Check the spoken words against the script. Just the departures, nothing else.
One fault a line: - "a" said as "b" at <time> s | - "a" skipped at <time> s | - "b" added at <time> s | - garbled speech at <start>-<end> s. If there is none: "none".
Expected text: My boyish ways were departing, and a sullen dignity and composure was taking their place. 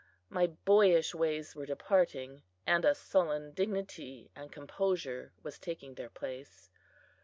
none